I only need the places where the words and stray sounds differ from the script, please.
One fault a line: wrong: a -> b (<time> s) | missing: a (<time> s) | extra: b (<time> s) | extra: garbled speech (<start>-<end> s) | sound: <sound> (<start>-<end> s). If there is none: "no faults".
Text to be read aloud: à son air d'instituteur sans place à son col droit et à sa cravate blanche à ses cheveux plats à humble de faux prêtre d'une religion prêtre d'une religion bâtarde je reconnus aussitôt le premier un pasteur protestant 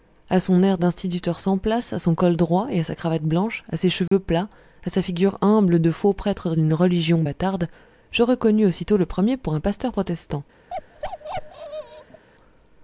sound: dropout (4.1-4.1 s)
extra: sa figure (4.9 s)
missing: prêtre d'une religion (7.2 s)
extra: pour (9.4 s)
sound: bark (10.7-12.2 s)